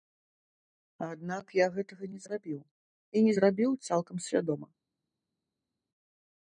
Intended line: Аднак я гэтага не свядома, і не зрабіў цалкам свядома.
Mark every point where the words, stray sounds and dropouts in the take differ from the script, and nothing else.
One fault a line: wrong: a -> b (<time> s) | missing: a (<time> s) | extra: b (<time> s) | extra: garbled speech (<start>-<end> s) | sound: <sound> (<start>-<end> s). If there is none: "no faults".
wrong: свядома -> зрабіў (2.3 s)